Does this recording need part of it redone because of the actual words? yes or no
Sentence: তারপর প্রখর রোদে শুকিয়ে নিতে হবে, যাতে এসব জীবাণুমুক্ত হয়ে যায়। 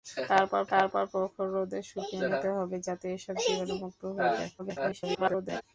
yes